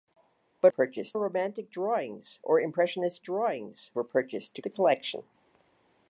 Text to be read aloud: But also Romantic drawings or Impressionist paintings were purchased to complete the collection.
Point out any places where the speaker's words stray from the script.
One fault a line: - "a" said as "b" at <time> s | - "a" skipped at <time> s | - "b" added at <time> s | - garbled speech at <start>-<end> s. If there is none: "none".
- "also" said as "purchased" at 0.7 s
- "paintings" said as "drawings" at 3.2 s
- "complete" skipped at 4.6 s